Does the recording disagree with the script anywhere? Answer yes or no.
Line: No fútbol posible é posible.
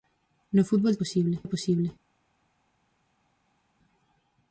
no